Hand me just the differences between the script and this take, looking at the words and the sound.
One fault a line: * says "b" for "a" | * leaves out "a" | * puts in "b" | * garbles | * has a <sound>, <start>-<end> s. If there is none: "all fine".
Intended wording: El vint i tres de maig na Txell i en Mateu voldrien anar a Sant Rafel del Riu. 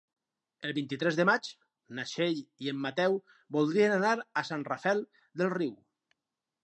all fine